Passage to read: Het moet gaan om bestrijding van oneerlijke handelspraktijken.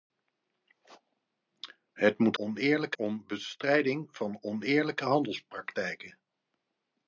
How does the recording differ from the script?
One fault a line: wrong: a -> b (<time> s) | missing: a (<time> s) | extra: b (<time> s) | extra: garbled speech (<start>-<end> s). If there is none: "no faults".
wrong: gaan -> oneerlijke (2.4 s)